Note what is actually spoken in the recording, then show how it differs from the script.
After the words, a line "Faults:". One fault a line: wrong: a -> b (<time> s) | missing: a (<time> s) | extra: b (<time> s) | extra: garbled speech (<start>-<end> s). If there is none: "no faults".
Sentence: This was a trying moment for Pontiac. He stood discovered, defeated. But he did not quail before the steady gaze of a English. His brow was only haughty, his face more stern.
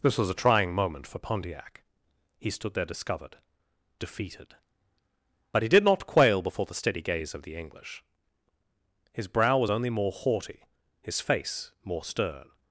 This was a trying moment for Pontiac. He stood there discovered, defeated. But he did not quail before the steady gaze of the English. His brow was only more haughty, his face more stern.
Faults:
extra: there (2.7 s)
wrong: a -> the (7.4 s)
extra: more (9.9 s)